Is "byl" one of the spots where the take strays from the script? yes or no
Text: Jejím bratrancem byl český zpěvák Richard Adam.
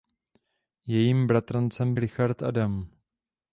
yes